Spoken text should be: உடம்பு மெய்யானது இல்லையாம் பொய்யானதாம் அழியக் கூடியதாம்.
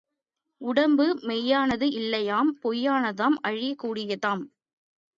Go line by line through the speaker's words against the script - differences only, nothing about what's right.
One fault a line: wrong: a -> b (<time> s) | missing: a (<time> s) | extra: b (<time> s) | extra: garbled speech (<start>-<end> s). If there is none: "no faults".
no faults